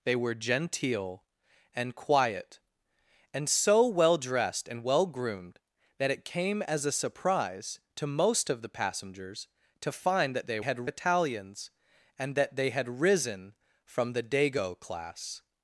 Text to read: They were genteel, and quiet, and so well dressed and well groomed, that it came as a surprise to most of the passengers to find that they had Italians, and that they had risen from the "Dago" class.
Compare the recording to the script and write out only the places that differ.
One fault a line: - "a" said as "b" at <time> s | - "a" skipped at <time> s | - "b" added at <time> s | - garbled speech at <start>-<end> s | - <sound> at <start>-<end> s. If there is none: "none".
none